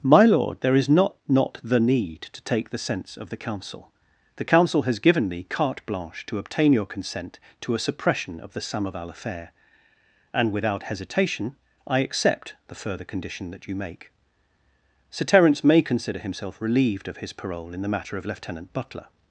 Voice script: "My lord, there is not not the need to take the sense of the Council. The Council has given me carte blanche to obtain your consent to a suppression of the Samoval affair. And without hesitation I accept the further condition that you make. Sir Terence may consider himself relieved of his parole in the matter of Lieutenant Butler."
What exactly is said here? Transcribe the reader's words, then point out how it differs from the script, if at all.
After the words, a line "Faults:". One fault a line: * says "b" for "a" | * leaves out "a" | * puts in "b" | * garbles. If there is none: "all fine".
"My lord, there is not not the need to take the sense of the Council. The Council has given me carte blanche to obtain your consent to a suppression of the Samoval affair. And without hesitation I accept the further condition that you make. Sir Terence may consider himself relieved of his parole in the matter of Lieutenant Butler."
Faults:
all fine